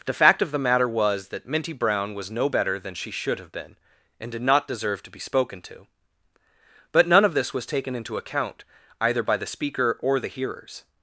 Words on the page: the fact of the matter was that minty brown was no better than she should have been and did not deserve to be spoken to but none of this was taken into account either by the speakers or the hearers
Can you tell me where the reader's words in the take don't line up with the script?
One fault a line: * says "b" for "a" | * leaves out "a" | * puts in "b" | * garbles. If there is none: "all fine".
* says "speaker" for "speakers"